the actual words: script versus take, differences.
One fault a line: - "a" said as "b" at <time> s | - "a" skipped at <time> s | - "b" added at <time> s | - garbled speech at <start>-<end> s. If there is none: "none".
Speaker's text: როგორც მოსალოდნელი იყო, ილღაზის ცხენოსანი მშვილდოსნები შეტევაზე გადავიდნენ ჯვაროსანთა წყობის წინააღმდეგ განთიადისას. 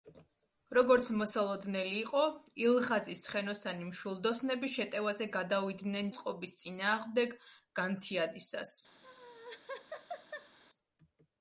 - "ჯვაროსანთა" skipped at 6.1 s